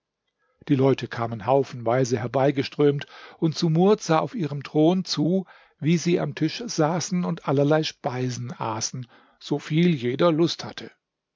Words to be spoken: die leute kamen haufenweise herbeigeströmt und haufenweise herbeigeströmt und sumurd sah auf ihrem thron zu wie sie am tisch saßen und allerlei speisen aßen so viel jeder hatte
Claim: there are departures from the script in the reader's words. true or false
true